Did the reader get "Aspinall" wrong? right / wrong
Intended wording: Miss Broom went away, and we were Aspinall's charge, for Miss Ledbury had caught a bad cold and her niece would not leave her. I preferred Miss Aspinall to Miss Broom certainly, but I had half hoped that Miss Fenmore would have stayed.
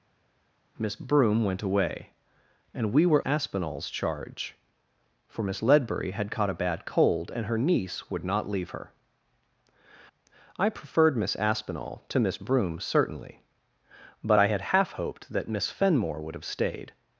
right